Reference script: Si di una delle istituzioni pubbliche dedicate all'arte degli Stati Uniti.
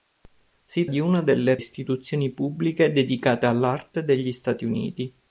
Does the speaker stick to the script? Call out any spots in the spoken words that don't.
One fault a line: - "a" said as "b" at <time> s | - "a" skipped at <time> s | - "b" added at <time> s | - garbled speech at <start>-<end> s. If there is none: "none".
none